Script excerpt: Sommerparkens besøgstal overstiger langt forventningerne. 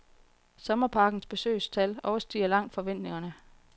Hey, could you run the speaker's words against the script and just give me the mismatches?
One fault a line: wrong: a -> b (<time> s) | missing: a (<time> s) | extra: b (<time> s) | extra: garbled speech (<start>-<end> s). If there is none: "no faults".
no faults